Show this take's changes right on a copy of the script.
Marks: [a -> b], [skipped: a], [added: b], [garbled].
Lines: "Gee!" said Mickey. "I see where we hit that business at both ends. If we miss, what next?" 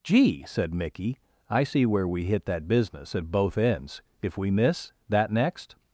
"Gee!" said Mickey. "I see where we hit that business at both ends. If we miss, [what -> that] next?"